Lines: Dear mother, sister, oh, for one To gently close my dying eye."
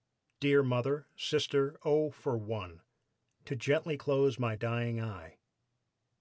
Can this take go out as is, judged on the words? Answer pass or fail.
pass